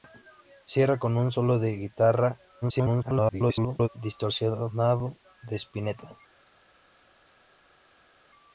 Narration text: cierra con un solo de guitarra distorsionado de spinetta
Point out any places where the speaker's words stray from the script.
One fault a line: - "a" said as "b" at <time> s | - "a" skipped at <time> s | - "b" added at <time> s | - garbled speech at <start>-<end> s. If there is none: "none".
- garbled speech at 2.6-3.9 s